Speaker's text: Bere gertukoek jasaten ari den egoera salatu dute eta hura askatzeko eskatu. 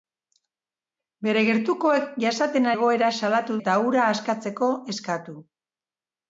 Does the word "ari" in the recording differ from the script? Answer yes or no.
yes